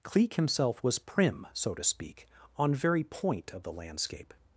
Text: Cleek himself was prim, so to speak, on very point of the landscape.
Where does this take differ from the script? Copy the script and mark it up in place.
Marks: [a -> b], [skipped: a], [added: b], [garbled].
Cleek himself was prim, so to speak, on very point of the landscape.